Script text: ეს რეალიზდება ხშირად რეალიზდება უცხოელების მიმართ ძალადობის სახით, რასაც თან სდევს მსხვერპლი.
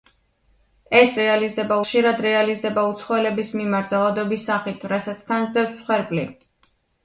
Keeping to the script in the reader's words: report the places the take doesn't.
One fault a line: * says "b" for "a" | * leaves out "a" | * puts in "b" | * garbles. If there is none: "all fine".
all fine